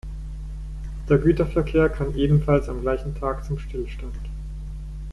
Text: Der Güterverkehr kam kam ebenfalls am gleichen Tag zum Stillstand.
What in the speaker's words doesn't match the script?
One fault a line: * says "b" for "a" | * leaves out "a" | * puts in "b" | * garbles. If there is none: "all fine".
* leaves out "kam"